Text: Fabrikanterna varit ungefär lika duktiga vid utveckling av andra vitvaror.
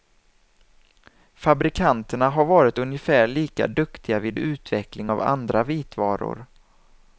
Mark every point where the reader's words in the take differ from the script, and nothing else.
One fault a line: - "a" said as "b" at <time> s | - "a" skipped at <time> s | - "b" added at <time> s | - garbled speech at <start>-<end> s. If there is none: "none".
- "har" added at 2.3 s